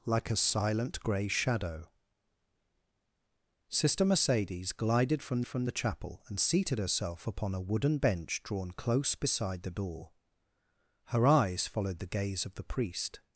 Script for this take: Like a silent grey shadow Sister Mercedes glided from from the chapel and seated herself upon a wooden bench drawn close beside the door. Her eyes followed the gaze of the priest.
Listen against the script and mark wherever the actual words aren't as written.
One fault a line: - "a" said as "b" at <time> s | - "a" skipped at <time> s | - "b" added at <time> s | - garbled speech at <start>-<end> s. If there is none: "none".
none